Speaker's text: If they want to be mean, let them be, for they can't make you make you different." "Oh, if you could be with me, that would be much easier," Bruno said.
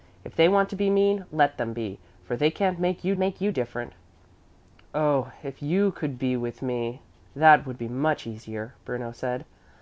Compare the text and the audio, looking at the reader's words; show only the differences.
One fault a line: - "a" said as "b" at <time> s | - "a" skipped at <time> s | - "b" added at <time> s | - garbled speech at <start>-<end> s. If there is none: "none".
none